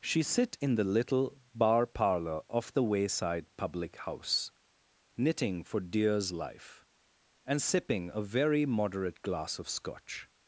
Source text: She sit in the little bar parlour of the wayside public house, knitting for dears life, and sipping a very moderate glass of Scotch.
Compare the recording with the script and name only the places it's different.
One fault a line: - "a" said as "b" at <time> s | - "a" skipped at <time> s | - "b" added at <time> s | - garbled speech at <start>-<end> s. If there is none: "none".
none